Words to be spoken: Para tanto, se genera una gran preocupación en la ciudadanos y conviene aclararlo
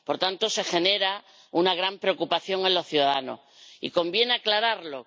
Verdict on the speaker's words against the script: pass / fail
fail